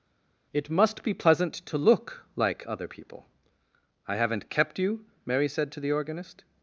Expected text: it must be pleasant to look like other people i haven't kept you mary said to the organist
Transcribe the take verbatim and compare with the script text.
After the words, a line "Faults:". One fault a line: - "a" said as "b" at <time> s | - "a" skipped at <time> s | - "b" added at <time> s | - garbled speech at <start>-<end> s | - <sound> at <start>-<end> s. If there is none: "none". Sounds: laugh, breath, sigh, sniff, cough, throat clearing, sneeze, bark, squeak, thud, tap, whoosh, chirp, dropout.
it must be pleasant to look like other people i haven't kept you mary said to the organist
Faults:
none